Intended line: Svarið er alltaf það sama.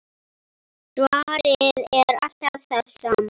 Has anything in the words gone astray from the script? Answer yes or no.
no